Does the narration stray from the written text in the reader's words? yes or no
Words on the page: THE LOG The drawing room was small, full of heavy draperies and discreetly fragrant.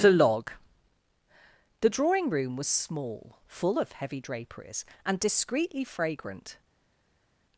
no